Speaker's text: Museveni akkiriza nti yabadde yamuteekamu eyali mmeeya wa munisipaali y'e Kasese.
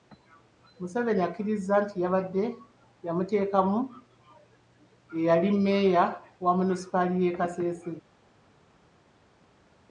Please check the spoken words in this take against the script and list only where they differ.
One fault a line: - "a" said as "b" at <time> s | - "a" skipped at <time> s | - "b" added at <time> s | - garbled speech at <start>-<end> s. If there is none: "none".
none